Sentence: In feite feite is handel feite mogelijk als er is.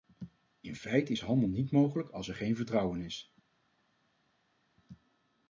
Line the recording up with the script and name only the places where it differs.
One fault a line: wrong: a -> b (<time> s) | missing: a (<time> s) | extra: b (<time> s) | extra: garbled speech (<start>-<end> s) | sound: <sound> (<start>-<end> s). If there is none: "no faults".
missing: feite (1.1 s)
wrong: feite -> niet (1.5 s)
extra: geen vertrouwen (2.3 s)